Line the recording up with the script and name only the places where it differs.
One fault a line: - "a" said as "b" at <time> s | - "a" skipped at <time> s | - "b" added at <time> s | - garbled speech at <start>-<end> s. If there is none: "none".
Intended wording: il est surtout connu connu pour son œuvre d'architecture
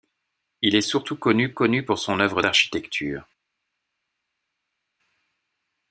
none